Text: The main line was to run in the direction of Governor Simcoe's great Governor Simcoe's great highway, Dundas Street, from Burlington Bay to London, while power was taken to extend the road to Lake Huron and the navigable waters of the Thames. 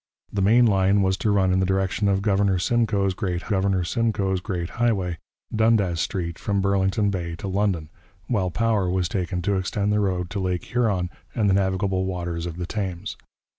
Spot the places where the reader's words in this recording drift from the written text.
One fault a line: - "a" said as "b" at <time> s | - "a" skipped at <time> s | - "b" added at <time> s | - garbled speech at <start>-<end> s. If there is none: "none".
none